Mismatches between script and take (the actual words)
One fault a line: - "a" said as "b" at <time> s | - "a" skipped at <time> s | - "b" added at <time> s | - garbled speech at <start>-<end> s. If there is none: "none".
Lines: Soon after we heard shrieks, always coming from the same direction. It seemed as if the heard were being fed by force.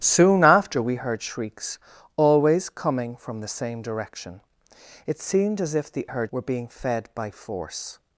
none